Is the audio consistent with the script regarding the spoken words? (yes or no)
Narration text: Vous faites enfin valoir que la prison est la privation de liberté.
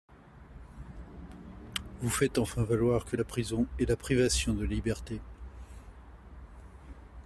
yes